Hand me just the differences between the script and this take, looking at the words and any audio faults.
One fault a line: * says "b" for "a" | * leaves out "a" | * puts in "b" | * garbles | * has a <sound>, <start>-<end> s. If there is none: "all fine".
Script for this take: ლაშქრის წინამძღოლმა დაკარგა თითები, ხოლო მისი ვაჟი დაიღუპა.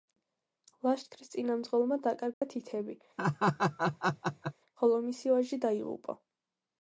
* has a dropout, 2.3-2.4 s
* has a laugh, 3.2-4.5 s